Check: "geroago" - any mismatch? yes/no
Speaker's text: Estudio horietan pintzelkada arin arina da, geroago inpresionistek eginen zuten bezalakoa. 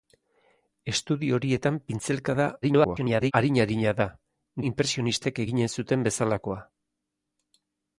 yes